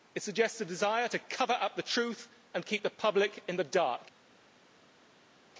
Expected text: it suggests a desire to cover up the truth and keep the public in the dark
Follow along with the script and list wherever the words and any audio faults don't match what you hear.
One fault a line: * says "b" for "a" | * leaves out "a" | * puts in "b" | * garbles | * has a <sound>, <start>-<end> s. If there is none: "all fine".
all fine